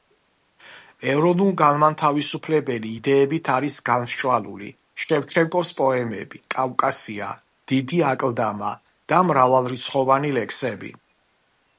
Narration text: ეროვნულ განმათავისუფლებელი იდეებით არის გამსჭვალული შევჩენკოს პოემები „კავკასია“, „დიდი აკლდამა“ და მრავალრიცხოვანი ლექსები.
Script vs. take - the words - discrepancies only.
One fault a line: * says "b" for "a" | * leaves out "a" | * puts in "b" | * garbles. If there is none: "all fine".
all fine